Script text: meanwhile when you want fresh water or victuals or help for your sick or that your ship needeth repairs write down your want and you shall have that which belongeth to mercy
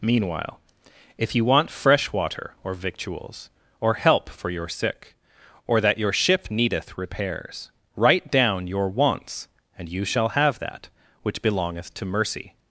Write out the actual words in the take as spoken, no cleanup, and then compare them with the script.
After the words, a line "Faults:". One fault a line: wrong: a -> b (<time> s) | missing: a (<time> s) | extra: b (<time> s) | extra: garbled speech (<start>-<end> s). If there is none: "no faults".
meanwhile if you want fresh water or victuals or help for your sick or that your ship needeth repairs write down your wants and you shall have that which belongeth to mercy
Faults:
wrong: when -> if (1.2 s)
wrong: want -> wants (8.9 s)